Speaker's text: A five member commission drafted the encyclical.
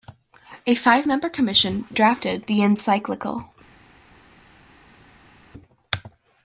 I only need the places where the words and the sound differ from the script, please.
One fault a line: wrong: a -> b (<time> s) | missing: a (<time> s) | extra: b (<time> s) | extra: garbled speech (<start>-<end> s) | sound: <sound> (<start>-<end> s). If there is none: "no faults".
no faults